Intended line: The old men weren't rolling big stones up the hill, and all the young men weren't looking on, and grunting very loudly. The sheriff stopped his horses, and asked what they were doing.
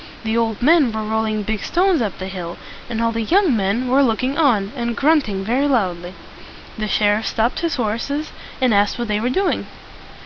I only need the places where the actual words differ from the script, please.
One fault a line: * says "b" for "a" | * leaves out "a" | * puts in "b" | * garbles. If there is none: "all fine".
* says "were" for "weren't"
* says "were" for "weren't"